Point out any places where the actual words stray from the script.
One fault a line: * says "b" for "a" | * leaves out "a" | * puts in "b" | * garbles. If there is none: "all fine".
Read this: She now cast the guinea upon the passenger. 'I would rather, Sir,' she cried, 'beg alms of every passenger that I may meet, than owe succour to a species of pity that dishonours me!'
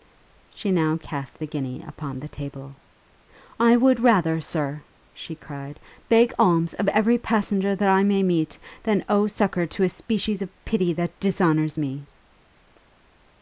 * says "table" for "passenger"